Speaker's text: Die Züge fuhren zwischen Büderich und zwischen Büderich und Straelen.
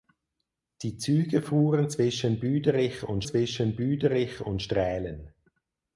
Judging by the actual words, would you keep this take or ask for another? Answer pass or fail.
pass